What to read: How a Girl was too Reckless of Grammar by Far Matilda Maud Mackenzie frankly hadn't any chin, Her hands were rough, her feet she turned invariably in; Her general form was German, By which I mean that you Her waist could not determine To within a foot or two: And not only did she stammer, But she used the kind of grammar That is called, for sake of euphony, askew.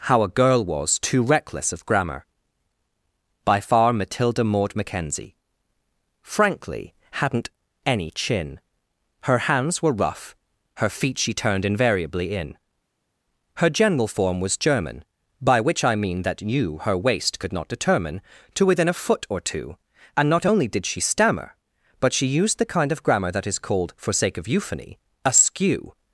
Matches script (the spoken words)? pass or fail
pass